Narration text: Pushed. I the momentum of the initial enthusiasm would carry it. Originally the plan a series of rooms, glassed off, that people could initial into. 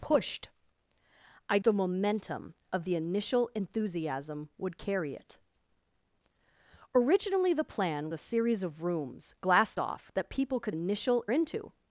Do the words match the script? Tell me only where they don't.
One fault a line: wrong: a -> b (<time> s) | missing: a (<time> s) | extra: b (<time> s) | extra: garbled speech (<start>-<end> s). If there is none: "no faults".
no faults